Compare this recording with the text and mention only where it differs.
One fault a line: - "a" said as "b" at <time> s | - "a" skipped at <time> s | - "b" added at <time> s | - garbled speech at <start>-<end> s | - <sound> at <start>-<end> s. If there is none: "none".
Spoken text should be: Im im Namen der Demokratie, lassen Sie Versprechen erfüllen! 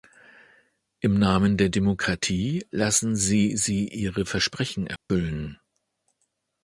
- "im" skipped at 1.2 s
- "sie ihre" added at 3.6 s
- dropout at 5.0-5.1 s